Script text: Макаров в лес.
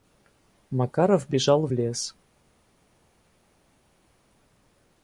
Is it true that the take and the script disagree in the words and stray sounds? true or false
true